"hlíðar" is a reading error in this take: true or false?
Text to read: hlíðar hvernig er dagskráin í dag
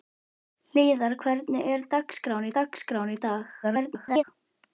false